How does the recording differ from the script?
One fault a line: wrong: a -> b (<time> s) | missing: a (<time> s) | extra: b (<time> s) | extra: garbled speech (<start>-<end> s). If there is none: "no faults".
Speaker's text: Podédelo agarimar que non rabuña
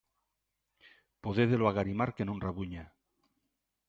no faults